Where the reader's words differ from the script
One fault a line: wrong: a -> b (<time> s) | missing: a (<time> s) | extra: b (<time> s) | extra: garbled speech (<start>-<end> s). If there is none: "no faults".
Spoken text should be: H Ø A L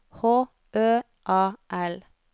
no faults